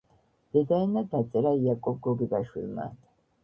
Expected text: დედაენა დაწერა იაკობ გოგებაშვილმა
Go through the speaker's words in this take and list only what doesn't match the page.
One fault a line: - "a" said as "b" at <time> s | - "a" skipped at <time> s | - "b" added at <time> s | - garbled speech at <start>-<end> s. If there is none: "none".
none